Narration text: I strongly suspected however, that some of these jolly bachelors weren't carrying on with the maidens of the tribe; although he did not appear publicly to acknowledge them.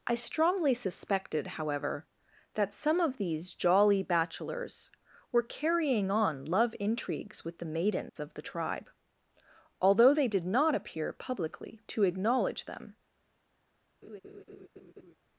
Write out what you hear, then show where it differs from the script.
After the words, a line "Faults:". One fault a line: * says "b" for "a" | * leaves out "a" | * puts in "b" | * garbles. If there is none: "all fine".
I strongly suspected however, that some of these jolly bachelors were carrying on love intrigues with the maidens of the tribe; although they did not appear publicly to acknowledge them.
Faults:
* says "were" for "weren't"
* puts in "love intrigues"
* says "they" for "he"